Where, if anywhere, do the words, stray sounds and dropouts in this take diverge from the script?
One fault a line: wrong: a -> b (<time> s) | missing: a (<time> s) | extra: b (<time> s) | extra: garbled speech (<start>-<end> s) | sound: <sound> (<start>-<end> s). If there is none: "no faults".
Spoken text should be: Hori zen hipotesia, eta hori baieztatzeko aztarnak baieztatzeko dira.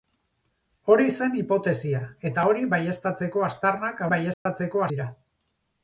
sound: dropout (4.3-4.5 s)